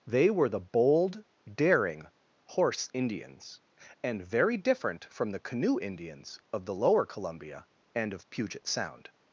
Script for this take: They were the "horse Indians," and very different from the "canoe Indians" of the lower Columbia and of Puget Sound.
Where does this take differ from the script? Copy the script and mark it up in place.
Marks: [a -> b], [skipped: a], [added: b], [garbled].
They were the [added: bold daring] "horse Indians," and very different from the "canoe Indians" of the lower Columbia and of Puget Sound.